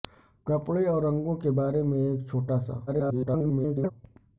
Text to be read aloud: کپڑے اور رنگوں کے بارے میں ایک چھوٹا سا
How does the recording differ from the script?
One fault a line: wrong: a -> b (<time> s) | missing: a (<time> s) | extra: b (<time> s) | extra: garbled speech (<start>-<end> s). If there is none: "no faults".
extra: garbled speech (2.9-3.9 s)